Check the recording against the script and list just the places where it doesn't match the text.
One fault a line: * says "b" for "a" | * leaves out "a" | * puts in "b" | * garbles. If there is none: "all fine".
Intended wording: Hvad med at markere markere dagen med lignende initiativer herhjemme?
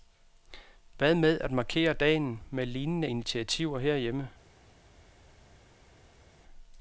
* leaves out "markere"